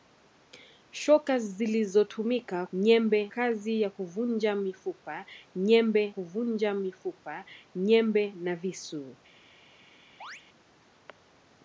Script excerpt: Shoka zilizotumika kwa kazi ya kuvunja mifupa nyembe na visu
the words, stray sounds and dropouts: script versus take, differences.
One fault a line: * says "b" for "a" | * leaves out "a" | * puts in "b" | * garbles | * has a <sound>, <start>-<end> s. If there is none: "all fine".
* says "nyembe" for "kwa"
* puts in "kuvunja mifupa nyembe"
* has a chirp, 10.2-10.4 s